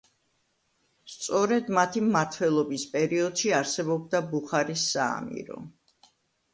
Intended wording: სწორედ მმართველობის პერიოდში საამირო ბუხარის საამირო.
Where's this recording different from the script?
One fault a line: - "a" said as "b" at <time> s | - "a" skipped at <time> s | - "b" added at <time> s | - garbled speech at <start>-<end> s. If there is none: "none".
- "მათი" added at 1.8 s
- "საამირო" said as "არსებობდა" at 3.6 s